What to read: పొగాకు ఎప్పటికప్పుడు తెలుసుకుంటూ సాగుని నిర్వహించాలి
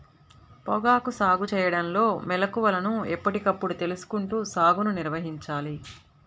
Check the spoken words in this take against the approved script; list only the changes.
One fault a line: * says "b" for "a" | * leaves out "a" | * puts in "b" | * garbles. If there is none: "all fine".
* puts in "సాగు చేయడంలో మెళుకువలను"